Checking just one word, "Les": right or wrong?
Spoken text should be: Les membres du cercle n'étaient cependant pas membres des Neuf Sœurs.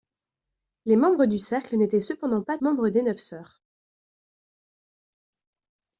right